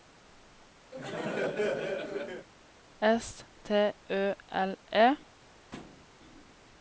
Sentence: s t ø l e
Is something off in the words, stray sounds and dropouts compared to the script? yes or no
yes